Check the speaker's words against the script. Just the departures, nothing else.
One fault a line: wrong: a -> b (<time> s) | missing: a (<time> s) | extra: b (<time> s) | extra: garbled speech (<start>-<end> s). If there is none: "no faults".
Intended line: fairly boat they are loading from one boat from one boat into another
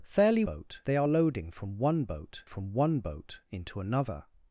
no faults